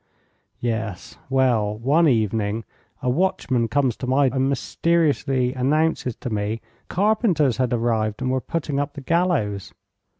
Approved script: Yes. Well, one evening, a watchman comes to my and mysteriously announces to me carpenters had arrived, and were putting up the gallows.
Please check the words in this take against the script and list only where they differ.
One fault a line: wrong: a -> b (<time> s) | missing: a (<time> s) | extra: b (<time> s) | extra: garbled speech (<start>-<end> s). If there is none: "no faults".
no faults